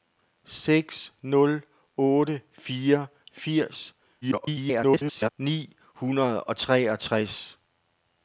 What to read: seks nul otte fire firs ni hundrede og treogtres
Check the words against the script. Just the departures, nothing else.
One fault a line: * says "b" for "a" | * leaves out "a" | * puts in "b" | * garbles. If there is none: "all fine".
* garbles